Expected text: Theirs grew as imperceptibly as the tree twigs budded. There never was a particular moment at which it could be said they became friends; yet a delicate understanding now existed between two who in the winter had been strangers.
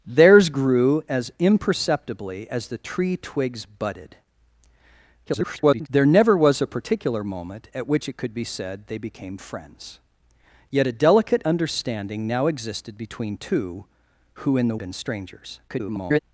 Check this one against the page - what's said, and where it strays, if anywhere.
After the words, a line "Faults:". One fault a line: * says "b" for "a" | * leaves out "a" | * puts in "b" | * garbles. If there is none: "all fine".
Theirs grew as imperceptibly as the tree twigs budded. [garbled] There never was a particular moment at which it could be said they became friends; yet a delicate understanding now existed between two who in the been strangers. [garbled]
Faults:
* garbles
* leaves out "winter had"
* garbles